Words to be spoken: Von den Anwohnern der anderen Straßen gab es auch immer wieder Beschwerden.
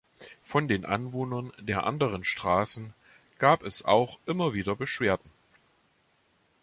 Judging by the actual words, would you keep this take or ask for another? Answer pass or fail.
pass